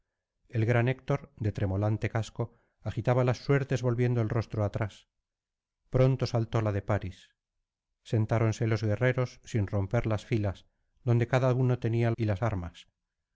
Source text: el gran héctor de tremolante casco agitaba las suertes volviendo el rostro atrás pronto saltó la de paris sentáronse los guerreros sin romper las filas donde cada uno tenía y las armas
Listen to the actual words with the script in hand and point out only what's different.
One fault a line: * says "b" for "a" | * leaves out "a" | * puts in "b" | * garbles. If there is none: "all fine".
all fine